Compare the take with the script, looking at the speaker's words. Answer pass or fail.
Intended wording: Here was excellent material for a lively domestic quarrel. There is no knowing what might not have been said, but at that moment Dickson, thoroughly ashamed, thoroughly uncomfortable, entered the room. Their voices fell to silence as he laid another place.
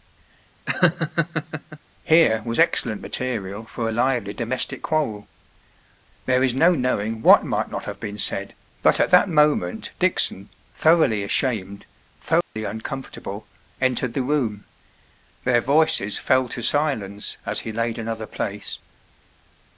pass